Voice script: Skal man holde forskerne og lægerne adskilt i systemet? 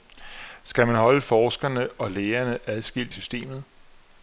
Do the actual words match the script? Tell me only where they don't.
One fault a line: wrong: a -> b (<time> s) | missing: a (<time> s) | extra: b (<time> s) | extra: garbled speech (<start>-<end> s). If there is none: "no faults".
missing: i (3.1 s)